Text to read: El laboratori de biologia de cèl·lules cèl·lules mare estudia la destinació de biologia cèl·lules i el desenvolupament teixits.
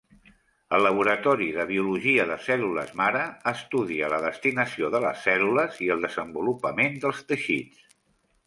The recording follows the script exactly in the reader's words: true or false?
false